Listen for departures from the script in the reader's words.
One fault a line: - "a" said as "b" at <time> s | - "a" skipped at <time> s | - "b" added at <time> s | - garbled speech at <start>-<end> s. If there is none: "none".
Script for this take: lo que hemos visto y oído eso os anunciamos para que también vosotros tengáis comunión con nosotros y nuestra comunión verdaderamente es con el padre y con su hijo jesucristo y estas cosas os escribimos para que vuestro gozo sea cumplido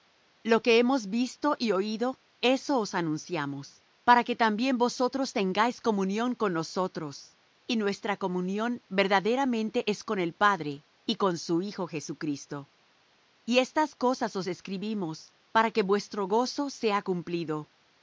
none